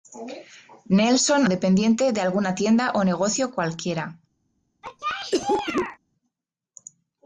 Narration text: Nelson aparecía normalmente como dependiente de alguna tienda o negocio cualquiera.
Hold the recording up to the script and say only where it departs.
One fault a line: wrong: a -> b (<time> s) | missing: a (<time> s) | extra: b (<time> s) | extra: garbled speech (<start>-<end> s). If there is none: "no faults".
missing: aparecía normalmente como (1.5 s)